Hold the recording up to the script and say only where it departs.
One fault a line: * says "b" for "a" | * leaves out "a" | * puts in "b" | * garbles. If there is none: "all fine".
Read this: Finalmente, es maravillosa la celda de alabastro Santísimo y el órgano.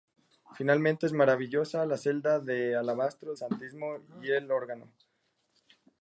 all fine